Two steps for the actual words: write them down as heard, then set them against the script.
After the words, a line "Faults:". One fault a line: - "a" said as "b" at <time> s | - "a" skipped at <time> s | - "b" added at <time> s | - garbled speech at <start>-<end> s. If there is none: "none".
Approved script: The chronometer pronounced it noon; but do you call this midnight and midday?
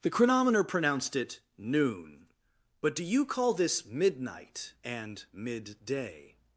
The chronometer pronounced it noon; but do you call this midnight and midday?
Faults:
none